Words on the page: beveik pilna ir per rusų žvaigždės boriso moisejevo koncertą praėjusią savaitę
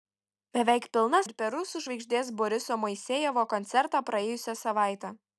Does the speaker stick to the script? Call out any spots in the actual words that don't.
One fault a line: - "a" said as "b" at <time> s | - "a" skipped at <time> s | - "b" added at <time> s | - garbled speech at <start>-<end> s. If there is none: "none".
none